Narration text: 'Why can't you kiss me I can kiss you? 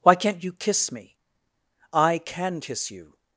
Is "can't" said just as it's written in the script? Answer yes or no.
yes